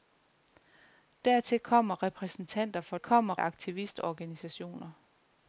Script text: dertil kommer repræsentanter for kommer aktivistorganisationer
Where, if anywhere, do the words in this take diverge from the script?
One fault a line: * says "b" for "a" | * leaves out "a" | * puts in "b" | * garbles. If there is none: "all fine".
all fine